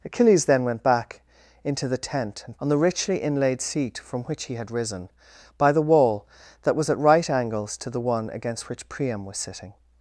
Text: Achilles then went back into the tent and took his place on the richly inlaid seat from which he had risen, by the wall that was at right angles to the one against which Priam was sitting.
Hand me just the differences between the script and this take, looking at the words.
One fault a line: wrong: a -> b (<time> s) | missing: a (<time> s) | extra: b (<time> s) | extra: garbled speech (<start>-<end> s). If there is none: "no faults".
missing: took his place (2.6 s)